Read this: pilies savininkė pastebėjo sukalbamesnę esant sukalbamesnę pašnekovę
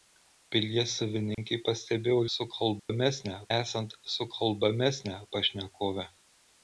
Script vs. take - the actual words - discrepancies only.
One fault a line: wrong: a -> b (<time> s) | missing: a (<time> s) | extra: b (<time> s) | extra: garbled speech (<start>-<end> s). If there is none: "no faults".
no faults